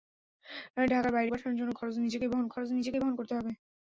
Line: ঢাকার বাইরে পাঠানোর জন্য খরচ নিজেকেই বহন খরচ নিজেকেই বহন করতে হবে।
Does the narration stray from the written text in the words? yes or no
no